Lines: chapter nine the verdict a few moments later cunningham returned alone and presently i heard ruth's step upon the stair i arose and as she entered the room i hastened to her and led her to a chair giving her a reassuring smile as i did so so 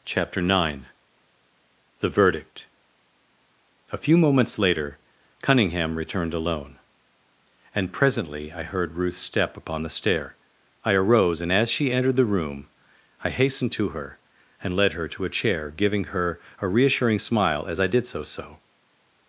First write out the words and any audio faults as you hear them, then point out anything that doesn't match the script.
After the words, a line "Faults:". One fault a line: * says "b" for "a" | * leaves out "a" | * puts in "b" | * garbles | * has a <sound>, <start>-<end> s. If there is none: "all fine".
chapter nine the verdict a few moments later cunningham returned alone and presently i heard ruth's step upon the stair i arose and as she entered the room i hastened to her and led her to a chair giving her a reassuring smile as i did so so
Faults:
all fine